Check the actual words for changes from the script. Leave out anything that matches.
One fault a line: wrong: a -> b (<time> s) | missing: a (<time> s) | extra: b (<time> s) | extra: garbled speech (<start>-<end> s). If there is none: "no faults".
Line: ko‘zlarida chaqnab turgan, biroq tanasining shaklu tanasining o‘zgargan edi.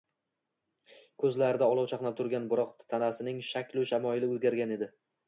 extra: olov (1.7 s)
wrong: tanasining -> shamoyili (3.9 s)